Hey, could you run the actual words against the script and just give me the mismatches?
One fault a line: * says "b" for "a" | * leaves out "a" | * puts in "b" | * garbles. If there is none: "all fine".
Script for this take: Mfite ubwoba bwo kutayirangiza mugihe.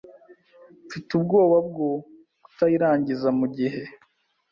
all fine